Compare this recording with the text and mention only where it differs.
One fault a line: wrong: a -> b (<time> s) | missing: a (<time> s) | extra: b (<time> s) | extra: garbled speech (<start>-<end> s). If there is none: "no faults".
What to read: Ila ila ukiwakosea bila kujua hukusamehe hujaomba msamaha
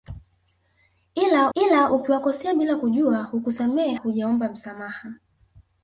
no faults